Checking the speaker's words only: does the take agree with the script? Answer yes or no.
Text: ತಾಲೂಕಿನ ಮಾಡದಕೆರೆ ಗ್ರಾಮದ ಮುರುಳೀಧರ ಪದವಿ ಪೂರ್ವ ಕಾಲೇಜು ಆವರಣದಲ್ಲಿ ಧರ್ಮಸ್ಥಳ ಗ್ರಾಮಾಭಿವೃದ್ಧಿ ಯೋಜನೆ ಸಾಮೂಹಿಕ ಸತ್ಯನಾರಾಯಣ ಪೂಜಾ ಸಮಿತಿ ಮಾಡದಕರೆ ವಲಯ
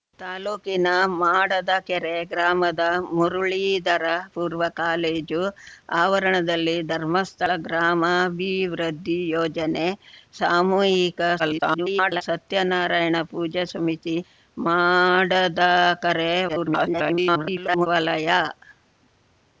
no